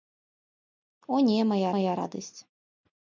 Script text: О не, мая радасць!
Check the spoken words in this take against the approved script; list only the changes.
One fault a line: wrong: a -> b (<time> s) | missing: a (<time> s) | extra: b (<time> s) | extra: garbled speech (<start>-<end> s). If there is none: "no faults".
extra: мая (1.8 s)